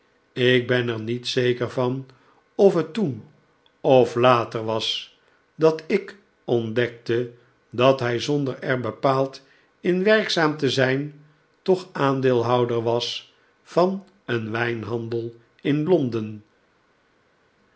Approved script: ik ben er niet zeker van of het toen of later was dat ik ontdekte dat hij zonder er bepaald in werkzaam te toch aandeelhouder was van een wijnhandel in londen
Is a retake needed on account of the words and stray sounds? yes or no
yes